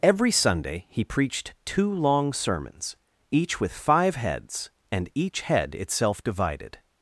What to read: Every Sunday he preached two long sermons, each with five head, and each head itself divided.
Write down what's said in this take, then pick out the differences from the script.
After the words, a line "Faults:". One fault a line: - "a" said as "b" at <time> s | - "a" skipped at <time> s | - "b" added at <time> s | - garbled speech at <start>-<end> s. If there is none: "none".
Every Sunday he preached two long sermons, each with five heads, and each head itself divided.
Faults:
- "head" said as "heads" at 4.2 s